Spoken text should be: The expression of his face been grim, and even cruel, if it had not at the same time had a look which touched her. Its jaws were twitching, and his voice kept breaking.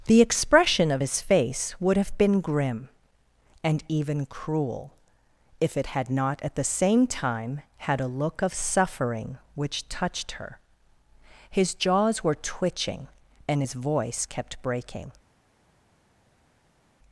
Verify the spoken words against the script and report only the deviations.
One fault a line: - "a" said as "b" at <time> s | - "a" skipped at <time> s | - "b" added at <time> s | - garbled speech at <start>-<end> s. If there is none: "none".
- "would have" added at 1.8 s
- "of suffering" added at 8.4 s
- "Its" said as "His" at 11.5 s